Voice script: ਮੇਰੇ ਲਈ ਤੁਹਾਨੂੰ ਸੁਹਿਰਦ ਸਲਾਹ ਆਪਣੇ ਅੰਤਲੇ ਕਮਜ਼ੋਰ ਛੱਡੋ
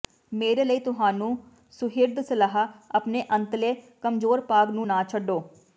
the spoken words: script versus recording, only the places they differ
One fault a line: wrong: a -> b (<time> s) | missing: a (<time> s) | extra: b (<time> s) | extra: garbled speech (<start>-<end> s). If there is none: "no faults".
extra: ਭਾਗ ਨੂੰ ਨਾ (4.5 s)